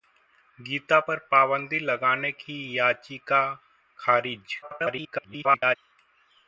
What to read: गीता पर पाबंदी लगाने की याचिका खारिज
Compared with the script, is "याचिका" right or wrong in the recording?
right